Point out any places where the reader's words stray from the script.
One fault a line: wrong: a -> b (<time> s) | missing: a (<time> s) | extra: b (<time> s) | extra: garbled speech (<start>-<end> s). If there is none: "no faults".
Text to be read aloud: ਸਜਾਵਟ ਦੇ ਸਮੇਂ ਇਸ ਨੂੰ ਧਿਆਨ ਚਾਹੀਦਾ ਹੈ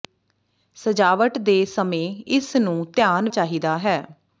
no faults